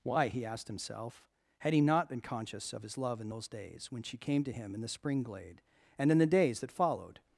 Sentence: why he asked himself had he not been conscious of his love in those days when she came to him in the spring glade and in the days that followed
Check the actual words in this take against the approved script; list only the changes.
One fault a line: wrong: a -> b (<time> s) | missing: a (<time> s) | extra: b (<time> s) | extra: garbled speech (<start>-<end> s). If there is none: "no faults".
no faults